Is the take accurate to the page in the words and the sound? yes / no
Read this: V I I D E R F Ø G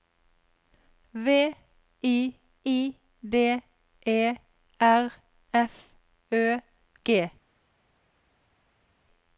yes